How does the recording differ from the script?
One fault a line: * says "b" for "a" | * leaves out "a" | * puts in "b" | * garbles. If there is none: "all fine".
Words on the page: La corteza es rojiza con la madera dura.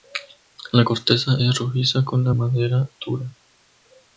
all fine